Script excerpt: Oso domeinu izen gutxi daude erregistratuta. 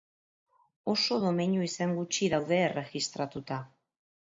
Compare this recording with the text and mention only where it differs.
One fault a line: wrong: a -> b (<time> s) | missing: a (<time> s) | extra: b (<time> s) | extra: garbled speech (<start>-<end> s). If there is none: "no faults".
no faults